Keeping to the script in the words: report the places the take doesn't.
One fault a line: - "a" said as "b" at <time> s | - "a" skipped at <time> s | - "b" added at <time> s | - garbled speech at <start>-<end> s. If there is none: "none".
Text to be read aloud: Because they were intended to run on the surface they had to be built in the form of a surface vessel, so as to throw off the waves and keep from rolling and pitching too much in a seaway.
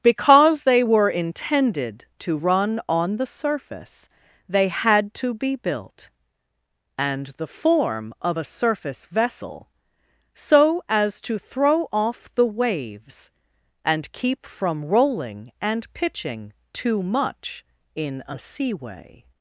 - "in" said as "and" at 7.0 s